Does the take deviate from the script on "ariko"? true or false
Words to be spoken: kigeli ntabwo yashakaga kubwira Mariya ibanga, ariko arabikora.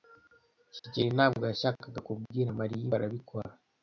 true